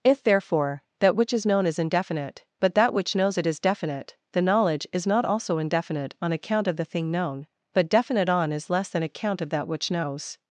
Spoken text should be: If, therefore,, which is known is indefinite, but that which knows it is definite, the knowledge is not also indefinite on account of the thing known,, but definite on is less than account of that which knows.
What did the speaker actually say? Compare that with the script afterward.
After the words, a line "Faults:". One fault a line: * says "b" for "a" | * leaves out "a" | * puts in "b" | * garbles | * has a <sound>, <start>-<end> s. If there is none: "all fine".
If, therefore,, that which is known is indefinite, but that which knows it is definite, the knowledge is not also indefinite on account of the thing known,, but definite on is less than account of that which knows.
Faults:
* puts in "that"